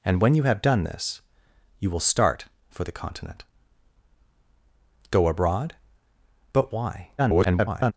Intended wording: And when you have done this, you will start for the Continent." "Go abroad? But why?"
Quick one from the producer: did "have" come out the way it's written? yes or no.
yes